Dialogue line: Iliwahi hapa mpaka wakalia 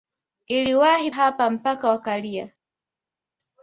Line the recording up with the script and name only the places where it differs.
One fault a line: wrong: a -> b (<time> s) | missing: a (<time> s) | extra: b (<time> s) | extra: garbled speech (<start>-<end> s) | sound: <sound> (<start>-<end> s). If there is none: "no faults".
no faults